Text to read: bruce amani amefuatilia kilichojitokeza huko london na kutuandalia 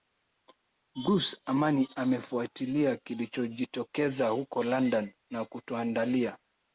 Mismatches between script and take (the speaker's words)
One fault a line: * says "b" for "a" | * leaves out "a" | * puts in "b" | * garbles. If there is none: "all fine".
all fine